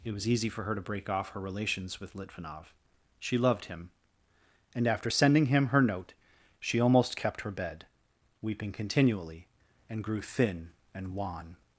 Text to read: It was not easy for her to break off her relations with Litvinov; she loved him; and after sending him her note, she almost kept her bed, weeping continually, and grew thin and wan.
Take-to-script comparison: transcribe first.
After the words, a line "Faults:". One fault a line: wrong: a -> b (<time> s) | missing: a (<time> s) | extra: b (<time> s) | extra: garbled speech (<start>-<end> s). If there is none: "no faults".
It was easy for her to break off her relations with Litvinov; she loved him; and after sending him her note, she almost kept her bed, weeping continually, and grew thin and wan.
Faults:
missing: not (0.3 s)